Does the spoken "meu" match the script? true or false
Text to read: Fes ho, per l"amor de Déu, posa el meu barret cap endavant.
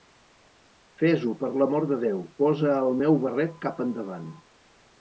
true